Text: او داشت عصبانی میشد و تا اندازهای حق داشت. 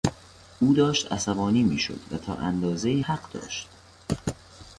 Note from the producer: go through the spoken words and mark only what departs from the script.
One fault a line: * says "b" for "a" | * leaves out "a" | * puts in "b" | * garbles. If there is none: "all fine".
all fine